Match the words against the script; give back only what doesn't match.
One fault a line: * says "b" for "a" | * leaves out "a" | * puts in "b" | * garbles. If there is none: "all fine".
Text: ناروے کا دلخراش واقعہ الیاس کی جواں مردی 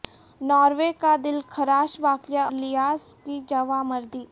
all fine